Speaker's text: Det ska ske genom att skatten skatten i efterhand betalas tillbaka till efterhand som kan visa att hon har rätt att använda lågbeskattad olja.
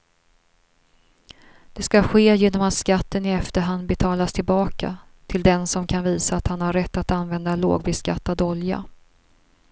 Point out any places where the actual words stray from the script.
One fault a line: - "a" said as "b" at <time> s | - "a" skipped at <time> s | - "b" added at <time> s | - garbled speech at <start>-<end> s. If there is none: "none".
- "skatten" skipped at 3.2 s
- "efterhand" said as "den" at 5.4 s
- "hon" said as "han" at 6.5 s